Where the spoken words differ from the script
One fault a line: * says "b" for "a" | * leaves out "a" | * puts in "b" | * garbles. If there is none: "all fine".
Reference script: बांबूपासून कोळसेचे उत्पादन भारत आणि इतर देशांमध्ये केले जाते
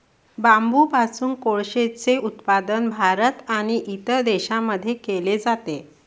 all fine